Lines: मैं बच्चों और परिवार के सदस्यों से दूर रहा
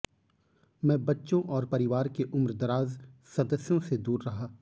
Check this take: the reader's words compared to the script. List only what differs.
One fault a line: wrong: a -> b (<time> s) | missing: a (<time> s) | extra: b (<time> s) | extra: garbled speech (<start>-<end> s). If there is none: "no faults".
extra: उम्रदराज (2.2 s)